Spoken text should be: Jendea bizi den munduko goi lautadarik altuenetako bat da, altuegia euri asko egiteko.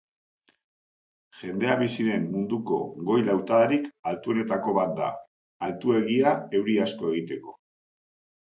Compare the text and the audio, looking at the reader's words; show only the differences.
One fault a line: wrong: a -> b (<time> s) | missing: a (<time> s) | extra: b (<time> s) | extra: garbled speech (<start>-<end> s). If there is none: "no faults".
no faults